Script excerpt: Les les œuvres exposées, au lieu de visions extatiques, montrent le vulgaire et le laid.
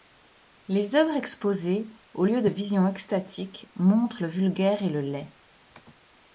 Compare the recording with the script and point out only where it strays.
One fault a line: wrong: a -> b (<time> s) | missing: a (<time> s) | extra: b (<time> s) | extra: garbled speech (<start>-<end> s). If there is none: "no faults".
missing: les (0.9 s)